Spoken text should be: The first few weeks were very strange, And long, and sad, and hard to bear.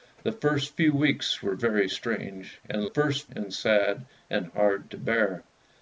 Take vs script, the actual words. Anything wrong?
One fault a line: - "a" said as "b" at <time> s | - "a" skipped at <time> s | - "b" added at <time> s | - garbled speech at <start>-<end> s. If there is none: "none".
- "long" said as "first" at 2.8 s